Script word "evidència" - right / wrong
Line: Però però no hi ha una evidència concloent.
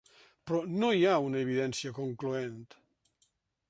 right